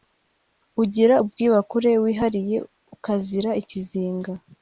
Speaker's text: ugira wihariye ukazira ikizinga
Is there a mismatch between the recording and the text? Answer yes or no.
yes